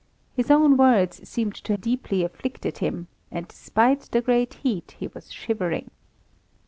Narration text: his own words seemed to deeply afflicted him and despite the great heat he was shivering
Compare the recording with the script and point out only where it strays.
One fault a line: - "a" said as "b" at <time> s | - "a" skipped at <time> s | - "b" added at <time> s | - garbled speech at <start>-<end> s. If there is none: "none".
none